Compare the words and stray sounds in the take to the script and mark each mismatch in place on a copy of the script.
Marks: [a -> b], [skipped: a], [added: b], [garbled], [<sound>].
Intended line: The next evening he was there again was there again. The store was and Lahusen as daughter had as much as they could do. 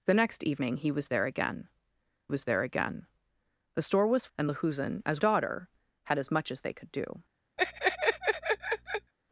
The next evening he was there again was there again. The store was and Lahusen as daughter had as much as they could do. [laugh]